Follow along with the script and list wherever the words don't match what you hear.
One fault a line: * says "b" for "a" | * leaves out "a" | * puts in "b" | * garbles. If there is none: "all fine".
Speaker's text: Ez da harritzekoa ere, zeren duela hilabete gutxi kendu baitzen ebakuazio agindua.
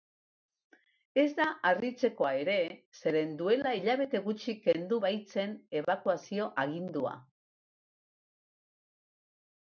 all fine